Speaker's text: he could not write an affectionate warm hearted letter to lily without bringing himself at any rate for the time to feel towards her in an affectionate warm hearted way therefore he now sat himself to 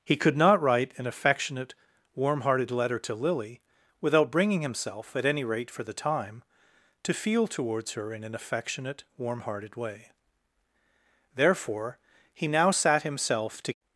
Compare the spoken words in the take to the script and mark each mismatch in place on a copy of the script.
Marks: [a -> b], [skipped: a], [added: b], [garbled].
he could not write an affectionate warm hearted letter to lily without bringing himself at any rate for the time to feel towards her in an affectionate warm hearted way therefore he now sat himself to